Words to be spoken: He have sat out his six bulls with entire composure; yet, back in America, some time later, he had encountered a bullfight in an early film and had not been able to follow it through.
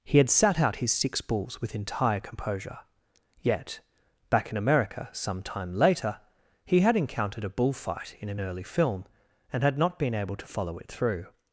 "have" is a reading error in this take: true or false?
true